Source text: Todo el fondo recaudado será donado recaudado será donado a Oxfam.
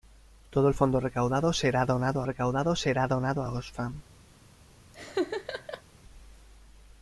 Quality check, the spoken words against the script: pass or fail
pass